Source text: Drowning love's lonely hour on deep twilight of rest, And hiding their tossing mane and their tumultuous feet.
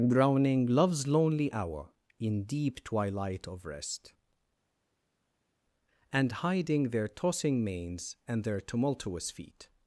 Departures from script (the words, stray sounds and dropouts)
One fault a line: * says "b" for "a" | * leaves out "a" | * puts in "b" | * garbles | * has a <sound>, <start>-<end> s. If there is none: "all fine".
* says "in" for "on"
* says "manes" for "mane"